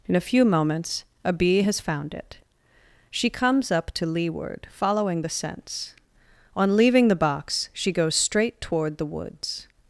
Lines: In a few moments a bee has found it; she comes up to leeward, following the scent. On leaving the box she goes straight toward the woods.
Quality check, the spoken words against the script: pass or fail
fail